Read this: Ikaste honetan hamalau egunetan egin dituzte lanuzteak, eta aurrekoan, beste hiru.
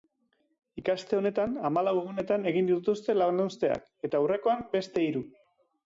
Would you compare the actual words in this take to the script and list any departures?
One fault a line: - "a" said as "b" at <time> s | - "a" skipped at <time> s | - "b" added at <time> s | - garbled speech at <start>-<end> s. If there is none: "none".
none